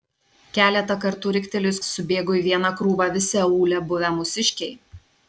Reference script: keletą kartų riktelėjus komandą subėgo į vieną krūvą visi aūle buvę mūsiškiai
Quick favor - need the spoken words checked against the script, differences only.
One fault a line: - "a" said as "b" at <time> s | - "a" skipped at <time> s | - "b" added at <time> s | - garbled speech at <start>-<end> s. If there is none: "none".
- "komandą" skipped at 1.8 s